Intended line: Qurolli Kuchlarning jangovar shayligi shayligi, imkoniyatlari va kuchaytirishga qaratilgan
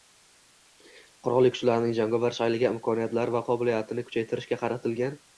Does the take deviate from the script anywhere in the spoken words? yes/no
yes